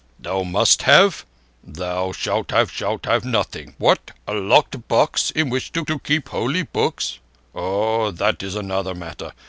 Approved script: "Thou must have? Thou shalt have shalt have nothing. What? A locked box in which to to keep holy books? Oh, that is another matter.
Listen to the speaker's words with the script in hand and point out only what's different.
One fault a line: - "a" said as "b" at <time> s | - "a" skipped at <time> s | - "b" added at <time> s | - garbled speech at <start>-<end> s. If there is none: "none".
none